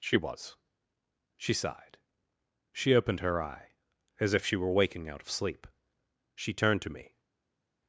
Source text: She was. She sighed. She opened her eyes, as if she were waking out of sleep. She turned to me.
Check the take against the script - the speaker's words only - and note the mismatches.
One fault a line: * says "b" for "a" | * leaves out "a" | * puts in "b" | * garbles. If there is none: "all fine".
* says "eye" for "eyes"